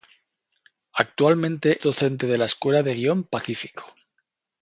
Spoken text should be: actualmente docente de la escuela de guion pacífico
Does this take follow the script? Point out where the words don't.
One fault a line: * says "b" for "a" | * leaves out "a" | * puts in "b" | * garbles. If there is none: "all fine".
all fine